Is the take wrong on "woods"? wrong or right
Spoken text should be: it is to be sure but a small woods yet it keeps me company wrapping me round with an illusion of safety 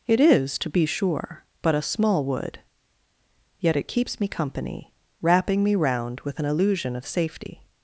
wrong